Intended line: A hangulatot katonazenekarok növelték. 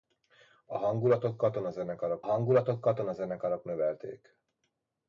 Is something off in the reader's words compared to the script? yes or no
yes